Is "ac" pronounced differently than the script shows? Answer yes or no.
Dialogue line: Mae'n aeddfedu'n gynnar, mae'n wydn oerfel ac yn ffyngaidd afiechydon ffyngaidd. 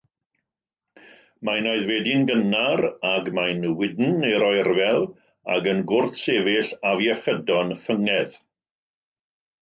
no